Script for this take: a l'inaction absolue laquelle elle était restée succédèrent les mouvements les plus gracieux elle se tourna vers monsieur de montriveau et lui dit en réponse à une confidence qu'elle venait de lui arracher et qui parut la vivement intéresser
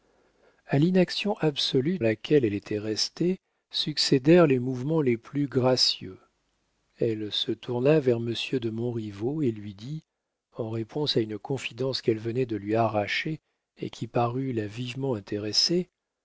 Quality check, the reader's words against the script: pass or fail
pass